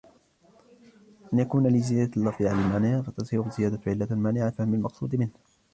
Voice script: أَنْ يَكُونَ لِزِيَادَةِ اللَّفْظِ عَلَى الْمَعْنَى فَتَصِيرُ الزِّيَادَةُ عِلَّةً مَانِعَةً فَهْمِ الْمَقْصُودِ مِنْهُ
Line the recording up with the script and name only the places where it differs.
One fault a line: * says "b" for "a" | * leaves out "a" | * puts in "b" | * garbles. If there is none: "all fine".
all fine